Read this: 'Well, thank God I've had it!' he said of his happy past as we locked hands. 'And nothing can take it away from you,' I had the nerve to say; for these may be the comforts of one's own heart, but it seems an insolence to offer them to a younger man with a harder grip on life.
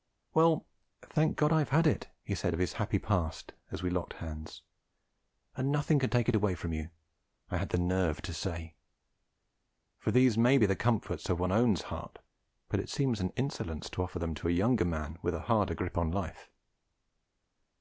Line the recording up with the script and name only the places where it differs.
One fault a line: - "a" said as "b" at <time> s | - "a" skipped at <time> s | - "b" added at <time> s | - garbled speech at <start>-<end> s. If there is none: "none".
none